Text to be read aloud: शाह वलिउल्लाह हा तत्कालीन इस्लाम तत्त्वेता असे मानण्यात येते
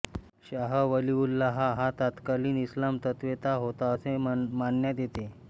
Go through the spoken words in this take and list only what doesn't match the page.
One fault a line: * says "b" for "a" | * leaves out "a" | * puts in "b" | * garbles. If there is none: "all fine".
* puts in "होता"